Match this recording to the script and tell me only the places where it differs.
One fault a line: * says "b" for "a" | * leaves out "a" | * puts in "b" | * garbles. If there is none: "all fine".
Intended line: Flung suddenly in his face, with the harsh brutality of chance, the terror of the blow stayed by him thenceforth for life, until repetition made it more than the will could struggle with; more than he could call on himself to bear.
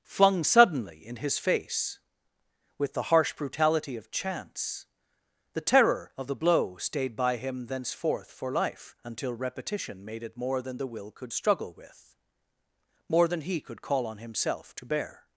all fine